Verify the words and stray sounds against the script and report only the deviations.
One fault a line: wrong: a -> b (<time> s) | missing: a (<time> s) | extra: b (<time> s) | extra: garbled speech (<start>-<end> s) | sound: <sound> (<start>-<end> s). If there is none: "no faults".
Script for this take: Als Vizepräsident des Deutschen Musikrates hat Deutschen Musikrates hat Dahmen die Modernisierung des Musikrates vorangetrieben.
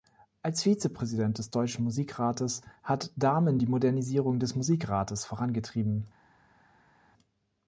missing: Deutschen Musikrates hat (3.1 s)